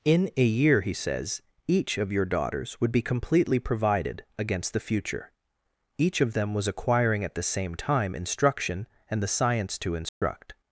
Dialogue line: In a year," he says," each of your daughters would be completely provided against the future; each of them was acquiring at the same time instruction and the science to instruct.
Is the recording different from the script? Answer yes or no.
no